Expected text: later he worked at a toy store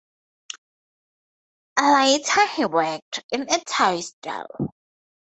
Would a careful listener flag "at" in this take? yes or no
yes